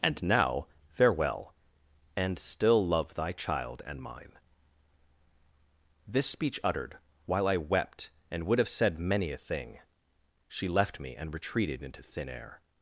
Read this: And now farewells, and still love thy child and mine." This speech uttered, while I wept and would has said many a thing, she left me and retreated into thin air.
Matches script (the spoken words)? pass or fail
fail